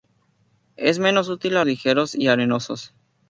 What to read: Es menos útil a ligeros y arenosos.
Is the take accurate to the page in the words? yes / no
yes